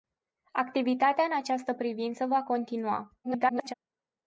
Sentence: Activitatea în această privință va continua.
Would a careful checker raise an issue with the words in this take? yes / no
yes